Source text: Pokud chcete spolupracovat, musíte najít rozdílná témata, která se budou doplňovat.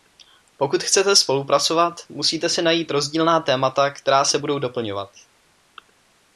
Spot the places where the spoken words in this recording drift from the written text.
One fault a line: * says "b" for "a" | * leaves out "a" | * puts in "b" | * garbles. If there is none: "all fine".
* puts in "si"